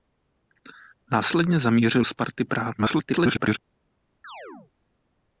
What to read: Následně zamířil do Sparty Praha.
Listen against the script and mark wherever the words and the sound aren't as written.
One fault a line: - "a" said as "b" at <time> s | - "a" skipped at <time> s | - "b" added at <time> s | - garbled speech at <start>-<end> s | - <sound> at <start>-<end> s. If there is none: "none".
- "do" skipped at 2.0 s
- garbled speech at 2.8-3.6 s
- chirp at 4.2-4.7 s